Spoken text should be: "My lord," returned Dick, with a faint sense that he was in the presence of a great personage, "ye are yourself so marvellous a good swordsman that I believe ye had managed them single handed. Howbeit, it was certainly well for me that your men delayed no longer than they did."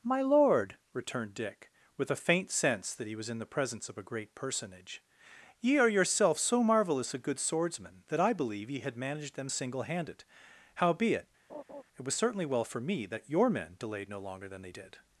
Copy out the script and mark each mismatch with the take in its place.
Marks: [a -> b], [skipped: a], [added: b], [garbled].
"My lord," returned Dick, with a faint sense that he was in the presence of a great personage, "ye are yourself so marvellous a good swordsman that I believe ye had managed them single handed. Howbeit, it was certainly well for me that your men delayed no longer than they did."